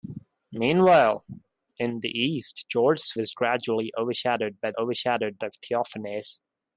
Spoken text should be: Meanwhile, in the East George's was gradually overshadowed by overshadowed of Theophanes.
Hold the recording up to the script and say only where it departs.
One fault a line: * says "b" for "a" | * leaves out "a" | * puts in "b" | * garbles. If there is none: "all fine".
all fine